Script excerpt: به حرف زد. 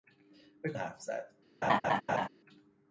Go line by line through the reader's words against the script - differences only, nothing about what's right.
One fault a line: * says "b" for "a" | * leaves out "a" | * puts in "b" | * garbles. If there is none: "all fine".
all fine